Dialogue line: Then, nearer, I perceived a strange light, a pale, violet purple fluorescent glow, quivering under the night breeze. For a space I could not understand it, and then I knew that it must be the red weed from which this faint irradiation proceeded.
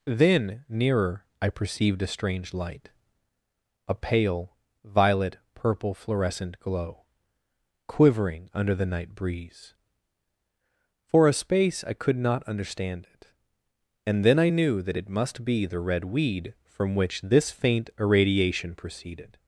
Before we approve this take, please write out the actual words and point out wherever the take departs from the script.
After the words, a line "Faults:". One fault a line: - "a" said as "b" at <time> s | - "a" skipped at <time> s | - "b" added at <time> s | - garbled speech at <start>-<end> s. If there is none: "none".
Then, nearer, I perceived a strange light, a pale, violet purple fluorescent glow, quivering under the night breeze. For a space I could not understand it, and then I knew that it must be the red weed from which this faint irradiation proceeded.
Faults:
none